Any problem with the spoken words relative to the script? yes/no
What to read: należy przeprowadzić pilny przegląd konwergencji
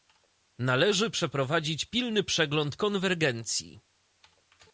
no